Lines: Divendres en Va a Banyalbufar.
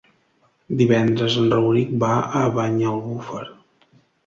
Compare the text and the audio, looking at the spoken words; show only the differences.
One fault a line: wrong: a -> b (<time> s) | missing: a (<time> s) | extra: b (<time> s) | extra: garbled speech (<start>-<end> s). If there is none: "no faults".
extra: Rauric (1.5 s)